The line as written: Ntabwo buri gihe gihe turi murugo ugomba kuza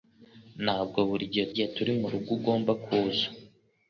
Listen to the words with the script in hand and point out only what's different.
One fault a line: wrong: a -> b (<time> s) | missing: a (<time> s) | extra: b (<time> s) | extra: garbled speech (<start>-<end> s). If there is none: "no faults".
no faults